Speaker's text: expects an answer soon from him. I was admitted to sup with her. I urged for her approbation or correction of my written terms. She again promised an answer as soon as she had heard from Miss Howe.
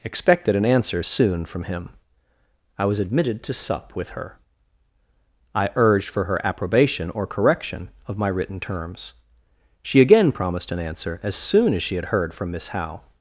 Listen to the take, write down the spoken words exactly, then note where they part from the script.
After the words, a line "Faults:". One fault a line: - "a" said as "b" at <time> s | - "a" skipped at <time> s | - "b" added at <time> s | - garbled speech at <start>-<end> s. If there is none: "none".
expected an answer soon from him. I was admitted to sup with her. I urged for her approbation or correction of my written terms. She again promised an answer as soon as she had heard from Miss Howe.
Faults:
- "expects" said as "expected" at 0.0 s